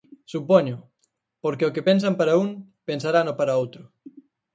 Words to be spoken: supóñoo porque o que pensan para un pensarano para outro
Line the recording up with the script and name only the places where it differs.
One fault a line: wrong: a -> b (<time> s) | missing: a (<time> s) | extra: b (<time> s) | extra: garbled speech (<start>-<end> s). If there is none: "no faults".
no faults